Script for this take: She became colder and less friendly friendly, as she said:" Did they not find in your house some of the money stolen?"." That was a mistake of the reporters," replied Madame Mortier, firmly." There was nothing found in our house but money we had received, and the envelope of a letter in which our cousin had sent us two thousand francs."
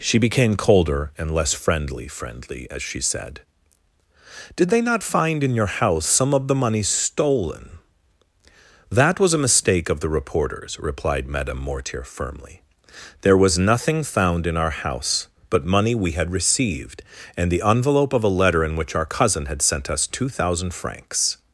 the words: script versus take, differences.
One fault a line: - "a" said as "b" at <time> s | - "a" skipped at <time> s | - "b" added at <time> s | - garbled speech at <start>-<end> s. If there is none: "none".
none